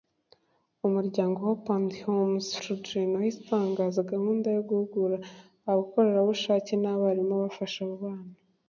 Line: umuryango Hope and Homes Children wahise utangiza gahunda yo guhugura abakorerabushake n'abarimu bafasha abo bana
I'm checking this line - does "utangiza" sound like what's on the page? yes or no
yes